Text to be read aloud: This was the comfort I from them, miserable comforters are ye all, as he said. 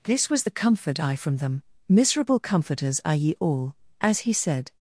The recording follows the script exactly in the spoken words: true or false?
true